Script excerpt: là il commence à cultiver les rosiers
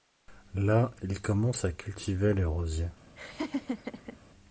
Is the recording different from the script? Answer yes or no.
no